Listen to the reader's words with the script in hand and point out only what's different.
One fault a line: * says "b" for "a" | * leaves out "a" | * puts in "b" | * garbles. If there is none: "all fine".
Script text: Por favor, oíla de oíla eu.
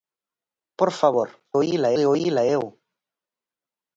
all fine